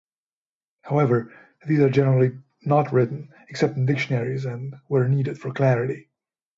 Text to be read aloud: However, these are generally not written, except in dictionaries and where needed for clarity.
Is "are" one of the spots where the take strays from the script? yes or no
no